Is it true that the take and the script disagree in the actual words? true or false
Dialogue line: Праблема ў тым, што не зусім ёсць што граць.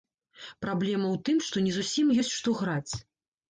false